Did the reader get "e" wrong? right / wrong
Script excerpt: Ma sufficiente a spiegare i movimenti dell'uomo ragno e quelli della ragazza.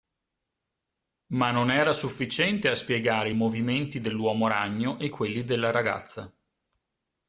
right